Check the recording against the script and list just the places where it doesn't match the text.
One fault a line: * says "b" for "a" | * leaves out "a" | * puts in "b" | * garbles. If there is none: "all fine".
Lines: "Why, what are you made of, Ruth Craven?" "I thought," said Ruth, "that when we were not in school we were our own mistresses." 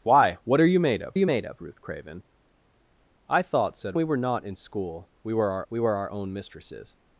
* puts in "you made of"
* leaves out "Ruth that when"
* puts in "we were our"